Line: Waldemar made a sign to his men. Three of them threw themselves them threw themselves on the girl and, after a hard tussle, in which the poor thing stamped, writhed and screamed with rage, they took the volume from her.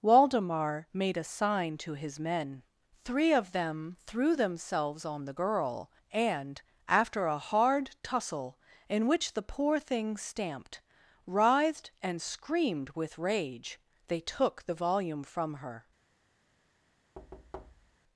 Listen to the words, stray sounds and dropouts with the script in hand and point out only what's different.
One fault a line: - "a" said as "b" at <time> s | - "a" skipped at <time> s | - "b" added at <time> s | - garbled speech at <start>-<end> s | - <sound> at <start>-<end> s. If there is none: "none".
- "them threw themselves" skipped at 5.0 s
- thud at 17.1-18.0 s